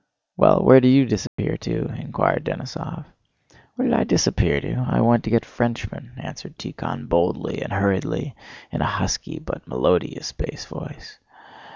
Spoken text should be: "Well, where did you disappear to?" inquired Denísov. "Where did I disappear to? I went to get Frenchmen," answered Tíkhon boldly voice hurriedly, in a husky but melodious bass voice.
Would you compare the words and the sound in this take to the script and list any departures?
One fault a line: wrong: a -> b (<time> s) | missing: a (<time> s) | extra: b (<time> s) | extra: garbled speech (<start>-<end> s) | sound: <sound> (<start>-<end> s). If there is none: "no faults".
sound: dropout (1.3-1.4 s)
wrong: voice -> and (7.6 s)